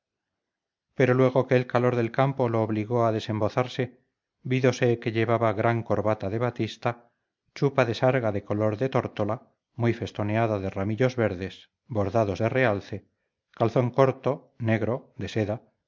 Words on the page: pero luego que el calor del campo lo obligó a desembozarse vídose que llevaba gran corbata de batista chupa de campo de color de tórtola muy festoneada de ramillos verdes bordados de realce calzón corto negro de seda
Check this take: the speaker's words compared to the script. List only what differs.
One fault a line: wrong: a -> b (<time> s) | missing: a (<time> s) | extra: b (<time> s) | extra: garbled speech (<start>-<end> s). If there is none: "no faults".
wrong: campo -> sarga (7.9 s)